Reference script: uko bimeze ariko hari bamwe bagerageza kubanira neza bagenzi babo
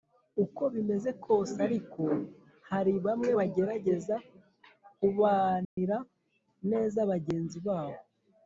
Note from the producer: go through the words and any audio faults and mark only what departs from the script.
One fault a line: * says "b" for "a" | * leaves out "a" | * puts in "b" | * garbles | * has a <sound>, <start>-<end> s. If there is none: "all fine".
* puts in "kose"
* has a dropout, 5.6-5.8 s